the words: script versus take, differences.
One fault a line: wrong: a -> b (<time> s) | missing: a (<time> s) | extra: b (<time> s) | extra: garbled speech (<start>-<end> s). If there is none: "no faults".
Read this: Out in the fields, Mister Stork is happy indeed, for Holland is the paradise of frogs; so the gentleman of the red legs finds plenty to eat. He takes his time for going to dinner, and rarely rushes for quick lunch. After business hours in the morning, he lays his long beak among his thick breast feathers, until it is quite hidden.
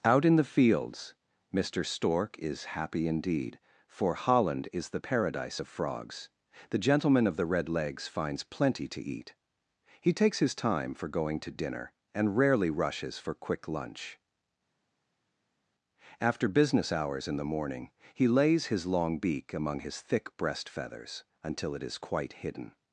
missing: so (6.3 s)